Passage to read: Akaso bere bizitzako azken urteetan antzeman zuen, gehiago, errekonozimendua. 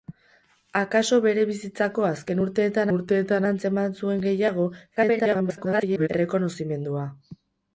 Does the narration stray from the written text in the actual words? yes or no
yes